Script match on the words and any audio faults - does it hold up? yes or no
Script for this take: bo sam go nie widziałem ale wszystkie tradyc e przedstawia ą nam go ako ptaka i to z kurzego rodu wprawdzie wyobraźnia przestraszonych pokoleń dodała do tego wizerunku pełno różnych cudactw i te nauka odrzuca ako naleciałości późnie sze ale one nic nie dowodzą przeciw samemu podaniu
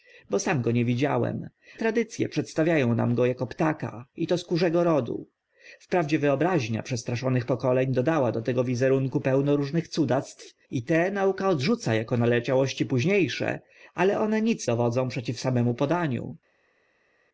no